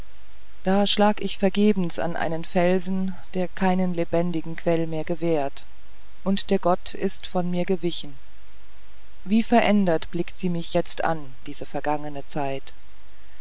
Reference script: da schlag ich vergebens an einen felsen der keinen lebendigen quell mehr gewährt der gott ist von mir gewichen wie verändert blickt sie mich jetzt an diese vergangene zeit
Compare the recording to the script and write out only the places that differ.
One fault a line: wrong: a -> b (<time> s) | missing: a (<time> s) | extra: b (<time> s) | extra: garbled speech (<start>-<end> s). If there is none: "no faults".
extra: und (6.2 s)